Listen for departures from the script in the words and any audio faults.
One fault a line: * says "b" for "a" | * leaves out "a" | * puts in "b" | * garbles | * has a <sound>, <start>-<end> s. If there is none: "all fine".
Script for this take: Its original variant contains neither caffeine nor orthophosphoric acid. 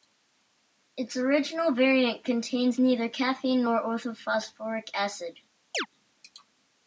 * has a chirp, 5.7-5.9 s